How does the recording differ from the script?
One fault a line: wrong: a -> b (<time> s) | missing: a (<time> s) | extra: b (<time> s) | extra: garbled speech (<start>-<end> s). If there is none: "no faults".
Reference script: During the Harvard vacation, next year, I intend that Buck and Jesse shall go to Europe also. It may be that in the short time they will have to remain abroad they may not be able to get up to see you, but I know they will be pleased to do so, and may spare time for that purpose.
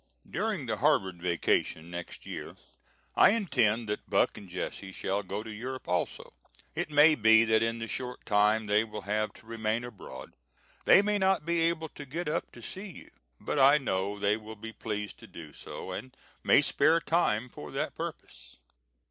no faults